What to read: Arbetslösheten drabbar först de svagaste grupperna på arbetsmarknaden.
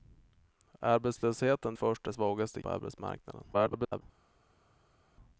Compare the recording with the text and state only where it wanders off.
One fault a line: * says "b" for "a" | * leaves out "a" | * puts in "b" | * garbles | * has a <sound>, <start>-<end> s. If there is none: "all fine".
* leaves out "drabbar"
* leaves out "grupperna"
* garbles